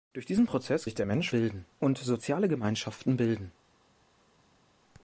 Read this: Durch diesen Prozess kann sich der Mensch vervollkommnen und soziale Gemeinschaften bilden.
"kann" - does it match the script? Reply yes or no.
no